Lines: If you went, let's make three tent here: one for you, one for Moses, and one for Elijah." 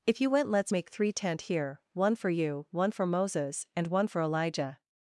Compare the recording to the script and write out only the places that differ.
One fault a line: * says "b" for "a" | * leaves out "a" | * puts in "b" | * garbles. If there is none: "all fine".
all fine